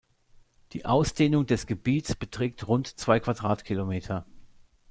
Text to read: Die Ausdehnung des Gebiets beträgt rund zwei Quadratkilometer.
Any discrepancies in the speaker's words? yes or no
no